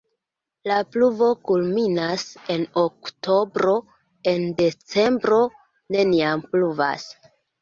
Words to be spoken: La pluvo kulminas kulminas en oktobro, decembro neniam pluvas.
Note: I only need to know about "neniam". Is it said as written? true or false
true